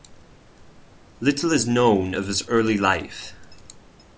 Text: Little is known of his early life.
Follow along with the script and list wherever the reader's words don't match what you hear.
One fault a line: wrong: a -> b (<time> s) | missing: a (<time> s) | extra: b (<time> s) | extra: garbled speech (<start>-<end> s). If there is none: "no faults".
no faults